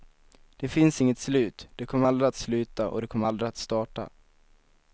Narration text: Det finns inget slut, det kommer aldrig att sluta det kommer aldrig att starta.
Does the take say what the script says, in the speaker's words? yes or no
no